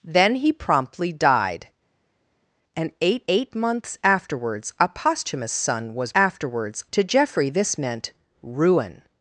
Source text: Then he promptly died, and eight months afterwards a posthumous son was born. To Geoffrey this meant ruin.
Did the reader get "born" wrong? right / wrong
wrong